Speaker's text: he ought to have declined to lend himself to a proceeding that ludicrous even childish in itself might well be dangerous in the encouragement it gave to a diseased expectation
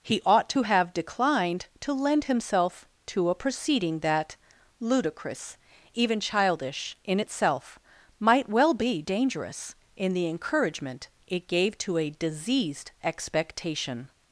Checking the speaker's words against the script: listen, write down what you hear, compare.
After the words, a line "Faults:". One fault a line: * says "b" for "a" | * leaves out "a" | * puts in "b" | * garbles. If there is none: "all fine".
he ought to have declined to lend himself to a proceeding that ludicrous even childish in itself might well be dangerous in the encouragement it gave to a diseased expectation
Faults:
all fine